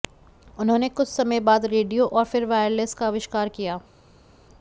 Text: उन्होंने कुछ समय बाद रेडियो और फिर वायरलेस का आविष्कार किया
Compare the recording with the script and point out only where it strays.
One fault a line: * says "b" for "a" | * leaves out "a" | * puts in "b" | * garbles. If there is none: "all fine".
all fine